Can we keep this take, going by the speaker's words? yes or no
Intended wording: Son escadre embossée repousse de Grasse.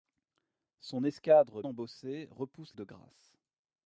yes